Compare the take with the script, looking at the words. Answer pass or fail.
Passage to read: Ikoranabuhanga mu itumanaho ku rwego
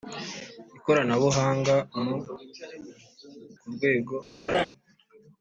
fail